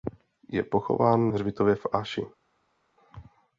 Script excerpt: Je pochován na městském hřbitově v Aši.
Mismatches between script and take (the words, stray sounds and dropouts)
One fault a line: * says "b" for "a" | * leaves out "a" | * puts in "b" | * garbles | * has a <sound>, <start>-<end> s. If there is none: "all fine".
* leaves out "na městském"